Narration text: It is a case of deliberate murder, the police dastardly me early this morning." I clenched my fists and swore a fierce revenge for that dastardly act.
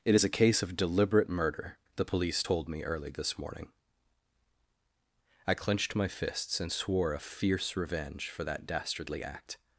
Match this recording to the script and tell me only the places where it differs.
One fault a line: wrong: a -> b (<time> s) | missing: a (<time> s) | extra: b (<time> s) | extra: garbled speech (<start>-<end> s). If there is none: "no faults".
wrong: dastardly -> told (2.4 s)